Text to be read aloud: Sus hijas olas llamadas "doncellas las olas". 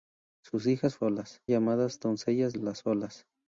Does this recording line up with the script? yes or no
yes